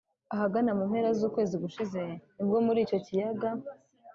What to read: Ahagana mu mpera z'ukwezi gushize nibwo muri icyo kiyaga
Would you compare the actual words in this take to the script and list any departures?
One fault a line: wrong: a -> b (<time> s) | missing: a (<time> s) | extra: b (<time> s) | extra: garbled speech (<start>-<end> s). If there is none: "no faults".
no faults